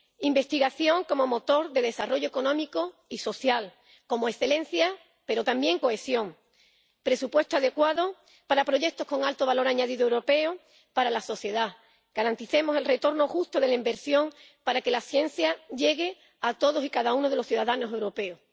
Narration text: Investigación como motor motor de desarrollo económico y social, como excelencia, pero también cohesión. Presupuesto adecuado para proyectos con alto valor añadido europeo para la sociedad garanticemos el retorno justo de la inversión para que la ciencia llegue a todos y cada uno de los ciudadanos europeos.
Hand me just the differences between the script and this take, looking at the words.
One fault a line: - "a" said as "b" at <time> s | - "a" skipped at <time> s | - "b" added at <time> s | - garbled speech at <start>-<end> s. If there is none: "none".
- "motor" skipped at 1.7 s